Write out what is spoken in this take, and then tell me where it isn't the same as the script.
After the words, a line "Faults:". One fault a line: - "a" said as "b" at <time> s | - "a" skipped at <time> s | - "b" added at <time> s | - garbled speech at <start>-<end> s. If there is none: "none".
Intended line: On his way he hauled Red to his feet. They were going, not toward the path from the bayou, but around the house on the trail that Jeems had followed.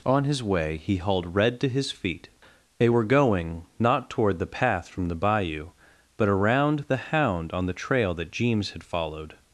On his way he hauled Red to his feet. They were going, not toward the path from the bayou, but around the hound on the trail that Jeems had followed.
Faults:
- "house" said as "hound" at 7.0 s